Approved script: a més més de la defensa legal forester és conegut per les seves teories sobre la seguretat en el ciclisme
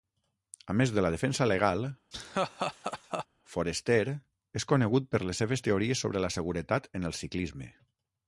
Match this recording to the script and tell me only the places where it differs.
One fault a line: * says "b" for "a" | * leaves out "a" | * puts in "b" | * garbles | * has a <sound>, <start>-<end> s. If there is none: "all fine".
* leaves out "més"
* has a laugh, 2.1-3.3 s